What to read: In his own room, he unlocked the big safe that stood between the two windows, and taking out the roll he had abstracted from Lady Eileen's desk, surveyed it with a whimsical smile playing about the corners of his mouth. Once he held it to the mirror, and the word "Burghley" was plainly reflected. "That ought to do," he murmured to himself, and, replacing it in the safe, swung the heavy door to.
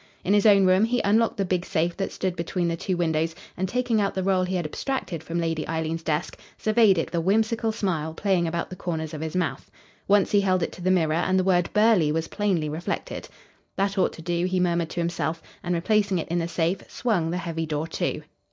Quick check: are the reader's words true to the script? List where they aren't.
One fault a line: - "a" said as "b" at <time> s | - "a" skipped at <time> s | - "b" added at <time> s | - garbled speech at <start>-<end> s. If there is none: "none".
- "with" skipped at 7.1 s